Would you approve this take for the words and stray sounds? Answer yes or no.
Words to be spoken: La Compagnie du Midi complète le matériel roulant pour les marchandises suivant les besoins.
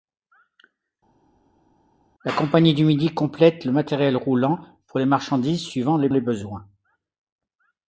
no